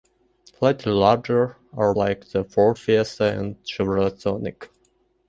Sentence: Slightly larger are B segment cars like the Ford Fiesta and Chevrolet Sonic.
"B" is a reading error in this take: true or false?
true